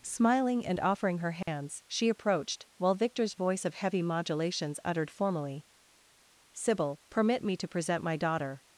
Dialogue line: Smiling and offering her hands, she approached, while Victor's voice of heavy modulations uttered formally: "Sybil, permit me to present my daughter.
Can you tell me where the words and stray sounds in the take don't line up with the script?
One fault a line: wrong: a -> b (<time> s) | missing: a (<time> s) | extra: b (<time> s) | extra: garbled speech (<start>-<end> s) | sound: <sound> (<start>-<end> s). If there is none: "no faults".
sound: dropout (1.4-1.5 s)